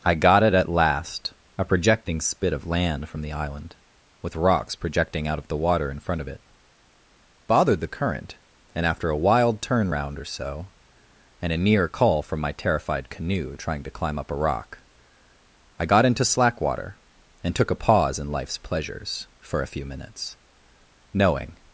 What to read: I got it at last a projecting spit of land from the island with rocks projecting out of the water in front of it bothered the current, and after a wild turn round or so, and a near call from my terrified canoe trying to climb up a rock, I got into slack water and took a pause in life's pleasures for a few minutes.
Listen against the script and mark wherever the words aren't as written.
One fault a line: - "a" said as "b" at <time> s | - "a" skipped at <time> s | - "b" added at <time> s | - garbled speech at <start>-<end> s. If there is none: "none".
- "Knowing" added at 21.1 s